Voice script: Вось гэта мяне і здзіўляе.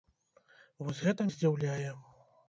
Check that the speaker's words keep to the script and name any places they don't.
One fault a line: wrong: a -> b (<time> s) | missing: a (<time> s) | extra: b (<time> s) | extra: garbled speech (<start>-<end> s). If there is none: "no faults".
missing: мяне (1.3 s)